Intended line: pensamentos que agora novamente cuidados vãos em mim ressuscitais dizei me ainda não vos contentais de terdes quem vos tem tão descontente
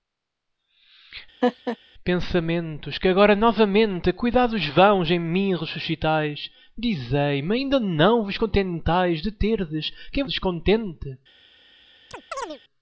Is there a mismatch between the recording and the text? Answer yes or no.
yes